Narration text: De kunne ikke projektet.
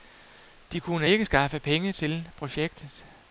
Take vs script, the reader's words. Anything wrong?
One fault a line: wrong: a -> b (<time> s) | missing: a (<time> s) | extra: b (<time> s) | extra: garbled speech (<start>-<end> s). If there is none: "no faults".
extra: skaffe penge til (1.2 s)